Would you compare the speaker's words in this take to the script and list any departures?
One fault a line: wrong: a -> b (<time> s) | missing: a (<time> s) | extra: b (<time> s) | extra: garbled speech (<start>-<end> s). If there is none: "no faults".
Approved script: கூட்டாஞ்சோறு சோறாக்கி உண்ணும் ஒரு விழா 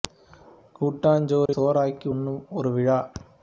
no faults